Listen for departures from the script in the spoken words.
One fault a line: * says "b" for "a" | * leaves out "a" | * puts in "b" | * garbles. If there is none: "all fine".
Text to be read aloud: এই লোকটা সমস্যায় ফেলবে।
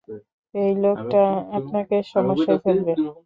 * puts in "আপনাকে"